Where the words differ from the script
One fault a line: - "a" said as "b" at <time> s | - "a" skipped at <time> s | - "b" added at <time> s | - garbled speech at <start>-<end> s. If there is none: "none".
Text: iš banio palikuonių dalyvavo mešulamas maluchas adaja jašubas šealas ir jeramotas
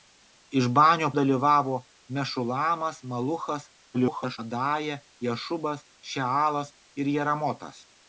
- "palikuonių" skipped at 1.1 s
- garbled speech at 3.9-4.4 s